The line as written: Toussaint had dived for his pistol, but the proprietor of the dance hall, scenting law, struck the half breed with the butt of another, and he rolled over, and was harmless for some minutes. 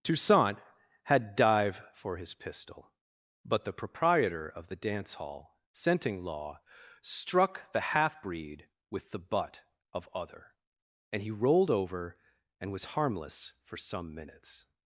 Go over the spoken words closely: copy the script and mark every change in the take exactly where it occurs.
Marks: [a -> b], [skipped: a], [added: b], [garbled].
Toussaint had [dived -> dive] for his pistol, but the proprietor of the dance hall, scenting law, struck the half breed with the butt of [another, -> other] and he rolled over, and was harmless for some minutes.